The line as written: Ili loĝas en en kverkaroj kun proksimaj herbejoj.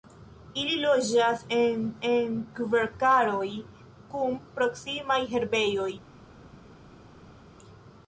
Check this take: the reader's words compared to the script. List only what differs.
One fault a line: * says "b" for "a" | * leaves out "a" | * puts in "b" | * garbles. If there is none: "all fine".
all fine